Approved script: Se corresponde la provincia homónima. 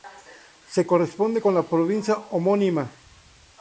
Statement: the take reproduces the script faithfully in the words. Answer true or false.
false